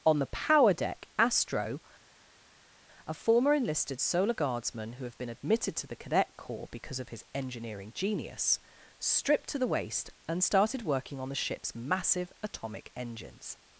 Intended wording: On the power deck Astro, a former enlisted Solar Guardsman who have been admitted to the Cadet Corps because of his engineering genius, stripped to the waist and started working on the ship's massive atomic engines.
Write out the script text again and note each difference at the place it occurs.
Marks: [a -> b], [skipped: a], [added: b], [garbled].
On the power deck Astro, a former enlisted Solar Guardsman who have been admitted to the Cadet Corps because of his engineering genius, stripped to the waist and started working on the ship's massive atomic engines.